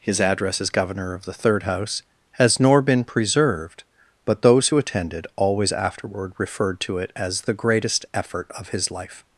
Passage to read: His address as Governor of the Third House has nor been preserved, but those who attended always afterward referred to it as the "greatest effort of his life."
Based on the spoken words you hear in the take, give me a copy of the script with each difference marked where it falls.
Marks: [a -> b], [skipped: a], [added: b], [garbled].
His address as Governor of the Third House has nor been preserved, but those who attended always afterward referred to it as the "greatest effort of his life."